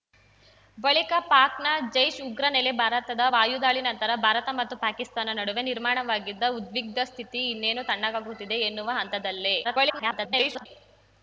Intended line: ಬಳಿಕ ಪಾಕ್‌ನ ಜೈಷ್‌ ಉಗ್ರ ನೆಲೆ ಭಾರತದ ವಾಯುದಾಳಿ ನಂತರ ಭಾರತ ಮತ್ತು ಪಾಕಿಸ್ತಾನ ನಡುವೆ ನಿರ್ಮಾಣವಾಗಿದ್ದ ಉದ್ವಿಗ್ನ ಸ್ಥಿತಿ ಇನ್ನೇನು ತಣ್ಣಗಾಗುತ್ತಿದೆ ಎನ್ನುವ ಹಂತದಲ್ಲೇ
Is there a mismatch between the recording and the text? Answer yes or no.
yes